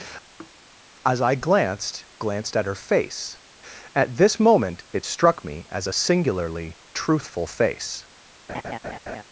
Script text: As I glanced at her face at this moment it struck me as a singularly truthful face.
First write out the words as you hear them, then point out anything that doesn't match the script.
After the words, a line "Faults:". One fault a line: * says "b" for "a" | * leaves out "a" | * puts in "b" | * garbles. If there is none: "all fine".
As I glanced glanced at her face at this moment it struck me as a singularly truthful face.
Faults:
* puts in "glanced"